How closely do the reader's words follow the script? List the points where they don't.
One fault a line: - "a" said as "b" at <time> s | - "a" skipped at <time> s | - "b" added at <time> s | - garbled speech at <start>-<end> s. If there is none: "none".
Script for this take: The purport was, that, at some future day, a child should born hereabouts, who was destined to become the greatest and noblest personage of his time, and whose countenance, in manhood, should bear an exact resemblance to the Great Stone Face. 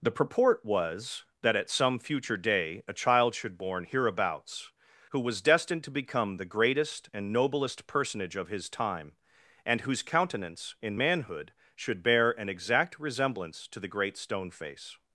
none